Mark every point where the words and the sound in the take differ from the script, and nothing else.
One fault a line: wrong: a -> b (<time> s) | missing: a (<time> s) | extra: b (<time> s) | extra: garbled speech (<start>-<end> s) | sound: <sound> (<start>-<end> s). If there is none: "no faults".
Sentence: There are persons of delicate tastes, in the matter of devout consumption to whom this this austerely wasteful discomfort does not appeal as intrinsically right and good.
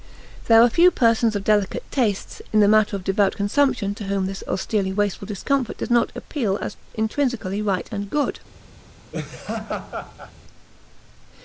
extra: few (0.7 s)
missing: this (4.5 s)
sound: laugh (9.1-10.3 s)